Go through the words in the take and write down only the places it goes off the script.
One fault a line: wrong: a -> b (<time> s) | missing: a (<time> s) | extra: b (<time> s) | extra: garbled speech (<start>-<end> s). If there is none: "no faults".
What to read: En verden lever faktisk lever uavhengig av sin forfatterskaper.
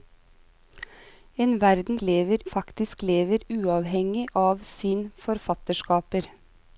no faults